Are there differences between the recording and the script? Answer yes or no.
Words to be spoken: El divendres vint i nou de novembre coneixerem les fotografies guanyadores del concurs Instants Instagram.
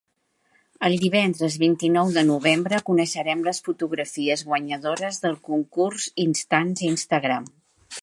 no